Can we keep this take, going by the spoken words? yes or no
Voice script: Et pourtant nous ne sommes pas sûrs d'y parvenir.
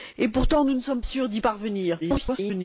no